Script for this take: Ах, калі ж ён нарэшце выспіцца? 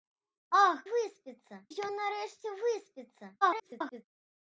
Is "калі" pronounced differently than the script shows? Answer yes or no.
yes